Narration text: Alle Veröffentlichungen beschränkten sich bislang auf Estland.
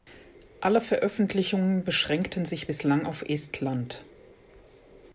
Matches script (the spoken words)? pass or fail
pass